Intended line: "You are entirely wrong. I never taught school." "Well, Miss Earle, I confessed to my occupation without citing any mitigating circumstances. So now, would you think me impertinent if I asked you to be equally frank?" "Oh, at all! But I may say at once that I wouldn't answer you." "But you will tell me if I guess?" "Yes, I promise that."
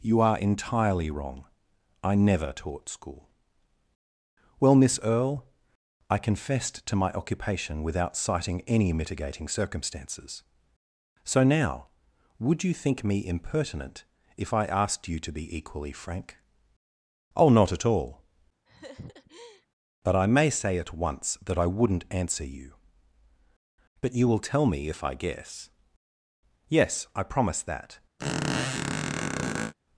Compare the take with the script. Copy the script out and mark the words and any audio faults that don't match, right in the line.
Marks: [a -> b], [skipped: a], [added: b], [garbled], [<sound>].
"You are entirely wrong. I never taught school." "Well, Miss Earle, I confessed to my occupation without citing any mitigating circumstances. So now, would you think me impertinent if I asked you to be equally frank?" "Oh, [added: not] at all! [laugh] But I may say at once that I wouldn't answer you." "But you will tell me if I guess?" "Yes, I promise that." [squeak]